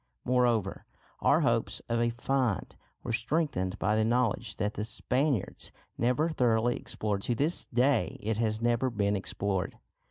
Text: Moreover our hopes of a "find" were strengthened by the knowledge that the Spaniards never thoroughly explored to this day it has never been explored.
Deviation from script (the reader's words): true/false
false